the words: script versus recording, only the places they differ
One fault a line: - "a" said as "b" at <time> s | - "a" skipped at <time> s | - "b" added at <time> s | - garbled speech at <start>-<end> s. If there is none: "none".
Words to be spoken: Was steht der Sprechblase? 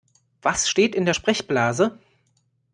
- "in" added at 0.9 s